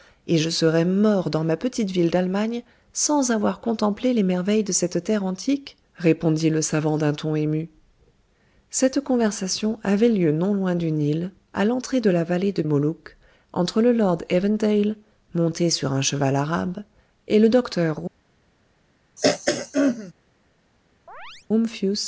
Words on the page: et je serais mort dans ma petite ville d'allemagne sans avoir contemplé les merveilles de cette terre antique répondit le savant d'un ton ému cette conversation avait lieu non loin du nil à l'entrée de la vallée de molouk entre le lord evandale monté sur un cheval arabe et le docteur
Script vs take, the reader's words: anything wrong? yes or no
no